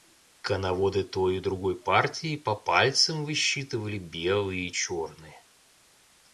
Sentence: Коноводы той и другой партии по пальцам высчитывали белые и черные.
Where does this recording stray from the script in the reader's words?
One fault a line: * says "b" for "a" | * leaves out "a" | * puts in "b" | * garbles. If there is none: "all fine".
all fine